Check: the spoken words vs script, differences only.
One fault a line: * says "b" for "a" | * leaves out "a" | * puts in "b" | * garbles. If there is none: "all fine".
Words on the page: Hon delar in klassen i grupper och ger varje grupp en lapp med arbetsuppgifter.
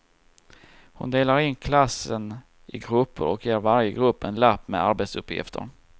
all fine